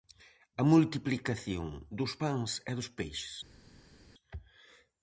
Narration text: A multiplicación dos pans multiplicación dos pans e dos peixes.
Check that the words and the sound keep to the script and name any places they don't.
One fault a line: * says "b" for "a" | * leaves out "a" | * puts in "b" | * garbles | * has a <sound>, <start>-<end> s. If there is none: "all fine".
* leaves out "multiplicación dos pans"